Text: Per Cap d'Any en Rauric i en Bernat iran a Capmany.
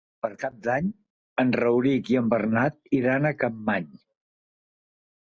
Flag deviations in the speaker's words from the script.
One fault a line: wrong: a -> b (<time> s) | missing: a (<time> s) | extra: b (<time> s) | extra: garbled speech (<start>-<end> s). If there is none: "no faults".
no faults